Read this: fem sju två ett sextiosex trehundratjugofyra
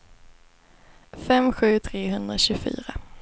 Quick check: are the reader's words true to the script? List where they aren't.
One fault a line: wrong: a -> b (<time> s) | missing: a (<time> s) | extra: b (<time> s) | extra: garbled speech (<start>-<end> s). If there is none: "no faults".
missing: två ett sextiosex (1.8 s)